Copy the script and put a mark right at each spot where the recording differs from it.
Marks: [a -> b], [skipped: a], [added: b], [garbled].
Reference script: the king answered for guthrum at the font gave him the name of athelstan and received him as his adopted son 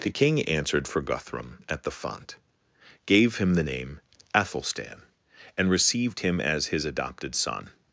the king answered for guthrum at the font gave him the name [skipped: of] athelstan and received him as his adopted son